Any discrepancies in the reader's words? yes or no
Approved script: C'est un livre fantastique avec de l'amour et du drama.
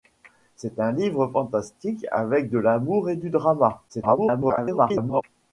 yes